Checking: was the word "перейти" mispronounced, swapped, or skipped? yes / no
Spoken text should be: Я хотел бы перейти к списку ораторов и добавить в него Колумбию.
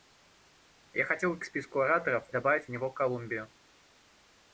yes